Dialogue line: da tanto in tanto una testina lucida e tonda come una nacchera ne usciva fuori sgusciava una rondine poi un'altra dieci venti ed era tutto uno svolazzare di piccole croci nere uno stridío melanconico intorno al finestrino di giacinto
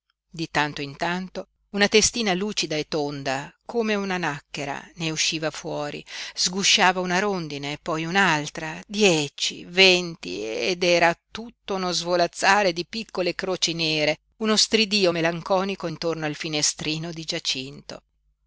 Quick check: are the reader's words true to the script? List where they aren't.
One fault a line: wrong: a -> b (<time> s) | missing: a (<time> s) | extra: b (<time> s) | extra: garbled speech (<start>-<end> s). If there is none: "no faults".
wrong: da -> di (0.3 s)